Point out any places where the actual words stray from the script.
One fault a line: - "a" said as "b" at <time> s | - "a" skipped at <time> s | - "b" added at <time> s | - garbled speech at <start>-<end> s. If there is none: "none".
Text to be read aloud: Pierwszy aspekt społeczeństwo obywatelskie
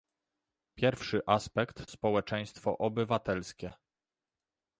none